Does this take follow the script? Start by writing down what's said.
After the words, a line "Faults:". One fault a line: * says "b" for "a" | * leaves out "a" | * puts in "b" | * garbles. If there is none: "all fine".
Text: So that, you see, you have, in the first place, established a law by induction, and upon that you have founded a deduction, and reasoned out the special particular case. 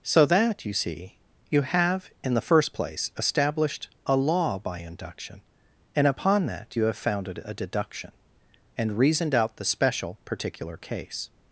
So that, you see, you have, in the first place, established a law by induction, and upon that you have founded a deduction, and reasoned out the special particular case.
Faults:
all fine